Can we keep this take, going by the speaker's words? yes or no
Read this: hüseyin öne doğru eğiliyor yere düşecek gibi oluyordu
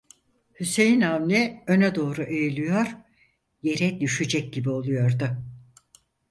no